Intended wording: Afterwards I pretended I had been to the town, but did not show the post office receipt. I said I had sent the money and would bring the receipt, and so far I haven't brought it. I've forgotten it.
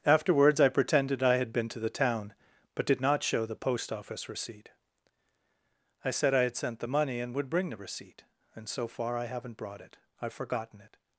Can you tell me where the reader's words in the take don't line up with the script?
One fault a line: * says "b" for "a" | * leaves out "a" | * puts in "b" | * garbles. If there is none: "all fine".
all fine